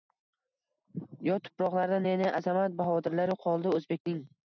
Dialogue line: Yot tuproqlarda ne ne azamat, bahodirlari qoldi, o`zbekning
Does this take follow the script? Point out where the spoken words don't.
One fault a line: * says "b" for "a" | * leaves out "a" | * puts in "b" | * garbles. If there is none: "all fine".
all fine